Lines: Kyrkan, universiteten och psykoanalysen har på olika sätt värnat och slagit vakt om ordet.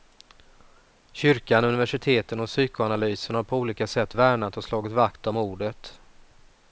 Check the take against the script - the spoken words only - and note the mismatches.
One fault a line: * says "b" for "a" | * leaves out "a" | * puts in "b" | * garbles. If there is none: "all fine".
all fine